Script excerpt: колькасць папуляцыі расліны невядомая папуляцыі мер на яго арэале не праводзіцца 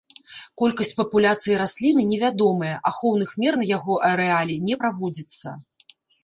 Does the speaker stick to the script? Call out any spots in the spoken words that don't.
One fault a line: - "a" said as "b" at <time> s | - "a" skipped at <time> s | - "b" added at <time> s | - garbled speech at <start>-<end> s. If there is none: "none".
- "папуляцыі" said as "ахоўных" at 2.9 s